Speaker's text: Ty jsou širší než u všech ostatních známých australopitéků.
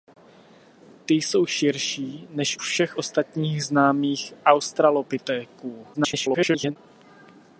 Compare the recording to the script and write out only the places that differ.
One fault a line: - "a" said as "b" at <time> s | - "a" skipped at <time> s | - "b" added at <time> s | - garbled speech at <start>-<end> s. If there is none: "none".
- "u" skipped at 2.6 s
- garbled speech at 5.9-6.8 s